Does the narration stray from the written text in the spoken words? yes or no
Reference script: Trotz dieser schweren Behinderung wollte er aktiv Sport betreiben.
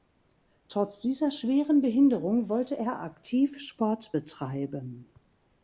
no